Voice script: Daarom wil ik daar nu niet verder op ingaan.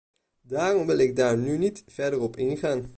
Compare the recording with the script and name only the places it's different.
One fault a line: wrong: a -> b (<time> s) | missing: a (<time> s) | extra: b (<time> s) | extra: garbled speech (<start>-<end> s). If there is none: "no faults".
no faults